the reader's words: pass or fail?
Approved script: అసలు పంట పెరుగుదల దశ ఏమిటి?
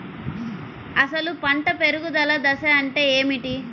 fail